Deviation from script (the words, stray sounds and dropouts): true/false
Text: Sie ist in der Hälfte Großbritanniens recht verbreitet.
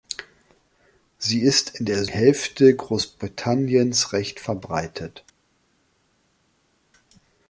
false